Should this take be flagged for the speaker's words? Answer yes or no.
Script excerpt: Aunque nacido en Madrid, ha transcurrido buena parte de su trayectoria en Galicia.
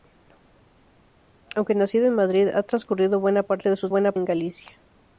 yes